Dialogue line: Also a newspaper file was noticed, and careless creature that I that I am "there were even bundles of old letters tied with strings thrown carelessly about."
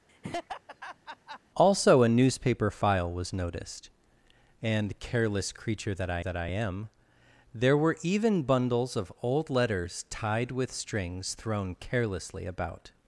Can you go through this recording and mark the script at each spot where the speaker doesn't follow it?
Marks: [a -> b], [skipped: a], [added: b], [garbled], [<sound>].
[laugh] Also a newspaper file was noticed, and careless creature that I that I am "there were even bundles of old letters tied with strings thrown carelessly about."